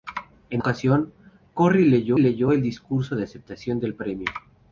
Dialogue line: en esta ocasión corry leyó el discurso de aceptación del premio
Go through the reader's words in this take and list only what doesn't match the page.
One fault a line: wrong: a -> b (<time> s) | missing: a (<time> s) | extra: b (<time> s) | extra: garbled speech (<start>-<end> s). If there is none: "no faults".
missing: esta (0.6 s)
extra: leyó (2.2 s)